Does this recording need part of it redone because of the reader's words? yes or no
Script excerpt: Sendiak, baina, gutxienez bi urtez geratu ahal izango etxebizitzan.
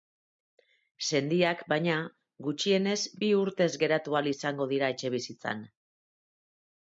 yes